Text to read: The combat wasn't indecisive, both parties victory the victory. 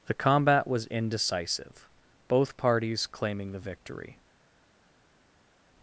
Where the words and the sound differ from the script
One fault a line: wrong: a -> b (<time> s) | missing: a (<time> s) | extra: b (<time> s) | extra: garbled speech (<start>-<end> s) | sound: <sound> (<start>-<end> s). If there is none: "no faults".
wrong: wasn't -> was (0.7 s)
wrong: victory -> claiming (3.0 s)